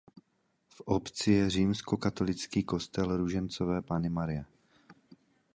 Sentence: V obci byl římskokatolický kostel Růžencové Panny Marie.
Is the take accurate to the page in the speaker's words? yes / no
no